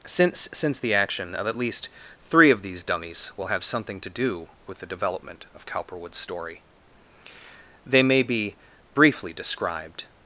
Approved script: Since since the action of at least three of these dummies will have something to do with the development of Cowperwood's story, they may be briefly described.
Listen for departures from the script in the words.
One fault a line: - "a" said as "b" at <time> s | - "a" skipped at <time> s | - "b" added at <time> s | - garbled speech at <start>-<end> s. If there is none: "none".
none